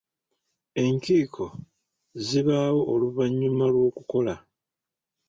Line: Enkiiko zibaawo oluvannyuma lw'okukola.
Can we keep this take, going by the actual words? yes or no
yes